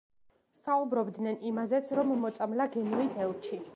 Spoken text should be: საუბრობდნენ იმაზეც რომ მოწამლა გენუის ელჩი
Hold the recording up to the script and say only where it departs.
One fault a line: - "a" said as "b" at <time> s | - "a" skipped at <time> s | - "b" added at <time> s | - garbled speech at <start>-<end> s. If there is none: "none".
none